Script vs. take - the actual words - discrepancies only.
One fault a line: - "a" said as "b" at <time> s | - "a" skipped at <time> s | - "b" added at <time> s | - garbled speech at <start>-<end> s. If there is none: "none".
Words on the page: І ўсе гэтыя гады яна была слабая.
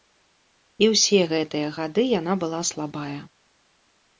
none